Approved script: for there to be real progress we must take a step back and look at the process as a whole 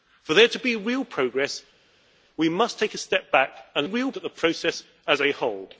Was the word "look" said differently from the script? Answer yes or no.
yes